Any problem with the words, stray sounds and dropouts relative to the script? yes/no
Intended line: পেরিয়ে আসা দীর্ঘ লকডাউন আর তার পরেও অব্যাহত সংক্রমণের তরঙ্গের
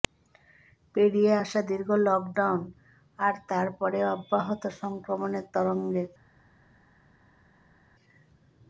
no